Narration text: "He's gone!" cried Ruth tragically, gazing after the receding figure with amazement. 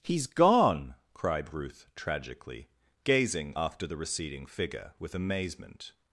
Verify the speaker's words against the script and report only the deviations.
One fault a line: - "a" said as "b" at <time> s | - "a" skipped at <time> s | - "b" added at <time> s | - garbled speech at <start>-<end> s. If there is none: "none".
none